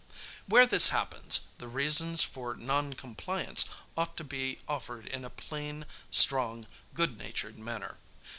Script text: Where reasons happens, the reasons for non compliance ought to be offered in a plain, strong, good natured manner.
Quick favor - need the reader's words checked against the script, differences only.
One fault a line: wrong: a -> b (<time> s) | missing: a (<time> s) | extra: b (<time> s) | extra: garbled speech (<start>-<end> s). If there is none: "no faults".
wrong: reasons -> this (0.7 s)